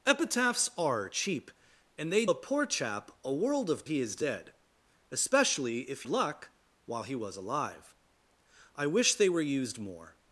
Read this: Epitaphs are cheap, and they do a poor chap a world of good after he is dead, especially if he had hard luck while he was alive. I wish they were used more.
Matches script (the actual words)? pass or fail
fail